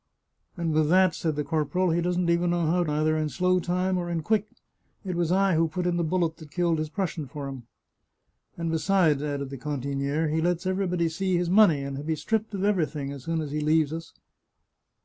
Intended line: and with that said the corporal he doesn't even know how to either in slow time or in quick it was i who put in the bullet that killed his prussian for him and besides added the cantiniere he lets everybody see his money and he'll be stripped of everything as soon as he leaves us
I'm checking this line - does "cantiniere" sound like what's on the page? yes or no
yes